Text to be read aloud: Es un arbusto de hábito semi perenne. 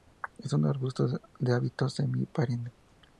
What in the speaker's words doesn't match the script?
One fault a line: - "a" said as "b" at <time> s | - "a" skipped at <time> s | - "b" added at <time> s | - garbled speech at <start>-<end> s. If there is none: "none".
none